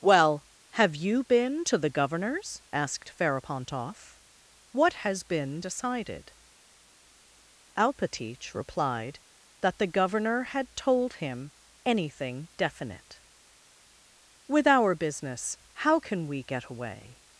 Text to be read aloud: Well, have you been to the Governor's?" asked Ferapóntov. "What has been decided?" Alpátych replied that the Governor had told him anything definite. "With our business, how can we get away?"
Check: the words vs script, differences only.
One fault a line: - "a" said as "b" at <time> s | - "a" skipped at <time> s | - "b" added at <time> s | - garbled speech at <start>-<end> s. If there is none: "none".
none